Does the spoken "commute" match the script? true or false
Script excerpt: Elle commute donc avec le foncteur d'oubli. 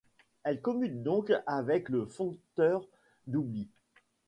true